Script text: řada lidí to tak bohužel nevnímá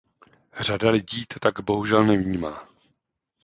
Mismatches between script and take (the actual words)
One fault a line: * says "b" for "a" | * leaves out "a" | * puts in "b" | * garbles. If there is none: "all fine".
all fine